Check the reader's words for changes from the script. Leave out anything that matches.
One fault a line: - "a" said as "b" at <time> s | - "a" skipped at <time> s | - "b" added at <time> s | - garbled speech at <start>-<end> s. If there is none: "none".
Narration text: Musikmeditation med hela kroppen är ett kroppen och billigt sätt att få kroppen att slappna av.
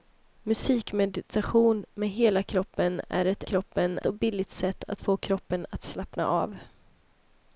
none